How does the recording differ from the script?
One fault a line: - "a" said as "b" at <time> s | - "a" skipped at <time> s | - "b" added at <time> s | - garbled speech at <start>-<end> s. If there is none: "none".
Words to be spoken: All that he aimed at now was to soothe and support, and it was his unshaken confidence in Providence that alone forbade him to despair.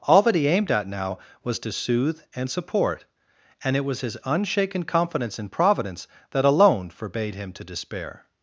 none